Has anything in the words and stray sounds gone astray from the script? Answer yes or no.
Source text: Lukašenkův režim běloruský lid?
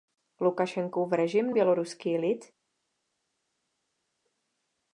no